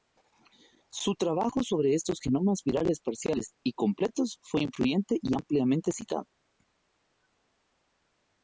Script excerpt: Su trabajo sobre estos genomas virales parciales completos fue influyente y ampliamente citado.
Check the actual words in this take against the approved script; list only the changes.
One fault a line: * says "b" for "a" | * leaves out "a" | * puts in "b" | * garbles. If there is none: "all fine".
* puts in "y"